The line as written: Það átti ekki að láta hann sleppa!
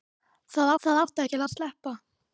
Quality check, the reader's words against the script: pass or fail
fail